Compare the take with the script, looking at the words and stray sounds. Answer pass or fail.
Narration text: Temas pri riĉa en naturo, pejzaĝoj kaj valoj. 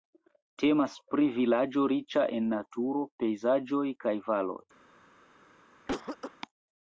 fail